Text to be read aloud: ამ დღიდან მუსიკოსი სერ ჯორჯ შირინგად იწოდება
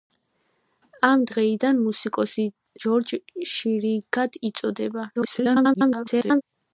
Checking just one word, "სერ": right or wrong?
wrong